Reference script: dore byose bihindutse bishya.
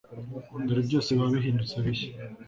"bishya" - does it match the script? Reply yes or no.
yes